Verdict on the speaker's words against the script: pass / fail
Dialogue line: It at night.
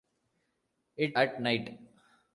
pass